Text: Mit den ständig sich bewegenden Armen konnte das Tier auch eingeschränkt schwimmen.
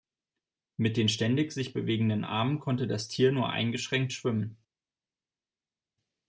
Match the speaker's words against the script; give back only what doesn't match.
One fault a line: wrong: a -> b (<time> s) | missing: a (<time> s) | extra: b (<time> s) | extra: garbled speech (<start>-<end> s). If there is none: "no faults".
wrong: auch -> nur (3.3 s)